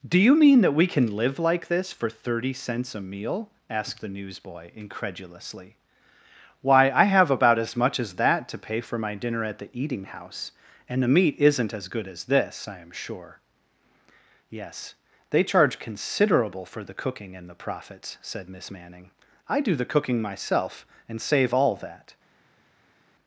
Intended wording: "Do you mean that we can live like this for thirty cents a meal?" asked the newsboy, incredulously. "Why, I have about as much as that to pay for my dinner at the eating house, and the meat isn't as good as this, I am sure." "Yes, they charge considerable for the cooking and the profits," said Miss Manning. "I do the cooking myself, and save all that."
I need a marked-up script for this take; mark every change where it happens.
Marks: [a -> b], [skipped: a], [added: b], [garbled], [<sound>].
"Do you mean that we can live like this for thirty cents a meal?" asked the newsboy, incredulously. "Why, I have about as much as that to pay for my dinner at the eating house, and the meat isn't as good as this, I am sure." "Yes, they charge considerable for the cooking and the profits," said Miss Manning. "I do the cooking myself, and save all that."